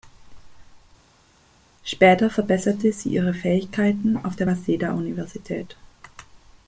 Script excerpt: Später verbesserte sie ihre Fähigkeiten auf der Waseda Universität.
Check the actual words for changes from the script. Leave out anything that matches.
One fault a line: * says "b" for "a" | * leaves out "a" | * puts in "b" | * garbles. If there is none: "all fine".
all fine